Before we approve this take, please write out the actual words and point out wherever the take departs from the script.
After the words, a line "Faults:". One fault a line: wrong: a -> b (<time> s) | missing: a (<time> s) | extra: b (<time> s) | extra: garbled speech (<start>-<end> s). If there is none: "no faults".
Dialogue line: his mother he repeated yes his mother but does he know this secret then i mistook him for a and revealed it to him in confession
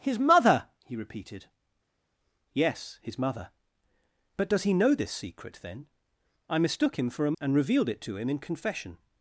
his mother he repeated yes his mother but does he know this secret then i mistook him for a and revealed it to him in confession
Faults:
no faults